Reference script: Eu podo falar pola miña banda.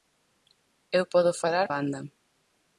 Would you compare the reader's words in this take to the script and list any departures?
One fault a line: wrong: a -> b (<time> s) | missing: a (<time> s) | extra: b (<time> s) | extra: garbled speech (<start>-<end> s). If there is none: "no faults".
missing: pola miña (1.7 s)